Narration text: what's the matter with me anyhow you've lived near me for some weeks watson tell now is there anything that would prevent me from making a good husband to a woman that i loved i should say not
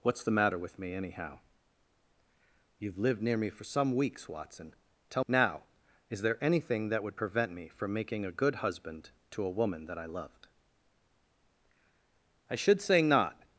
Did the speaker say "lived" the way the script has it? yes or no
yes